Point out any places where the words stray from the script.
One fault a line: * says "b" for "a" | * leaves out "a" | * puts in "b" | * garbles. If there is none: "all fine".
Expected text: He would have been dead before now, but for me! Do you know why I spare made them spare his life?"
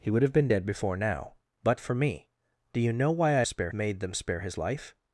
all fine